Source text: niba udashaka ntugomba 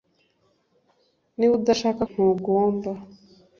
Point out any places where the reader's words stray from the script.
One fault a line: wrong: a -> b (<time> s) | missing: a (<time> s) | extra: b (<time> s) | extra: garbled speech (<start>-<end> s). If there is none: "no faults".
no faults